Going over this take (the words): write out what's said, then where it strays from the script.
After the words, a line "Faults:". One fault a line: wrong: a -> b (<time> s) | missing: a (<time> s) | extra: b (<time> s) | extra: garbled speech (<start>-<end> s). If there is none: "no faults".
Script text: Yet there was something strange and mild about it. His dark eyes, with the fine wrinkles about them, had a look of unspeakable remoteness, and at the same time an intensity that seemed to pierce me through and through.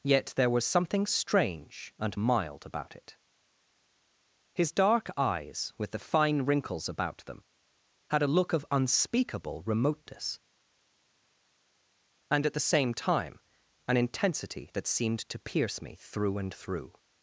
Yet there was something strange and mild about it. His dark eyes, with the fine wrinkles about them, had a look of unspeakable remoteness, and at the same time an intensity that seemed to pierce me through and through.
Faults:
no faults